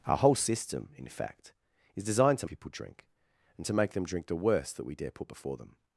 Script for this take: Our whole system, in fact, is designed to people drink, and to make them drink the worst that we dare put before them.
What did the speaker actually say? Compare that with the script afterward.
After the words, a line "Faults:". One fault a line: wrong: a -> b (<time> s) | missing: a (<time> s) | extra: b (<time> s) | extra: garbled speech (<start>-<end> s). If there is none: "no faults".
Our whole system, in fact, is designed to people drink, and to make them drink the worst that we dare put before them.
Faults:
no faults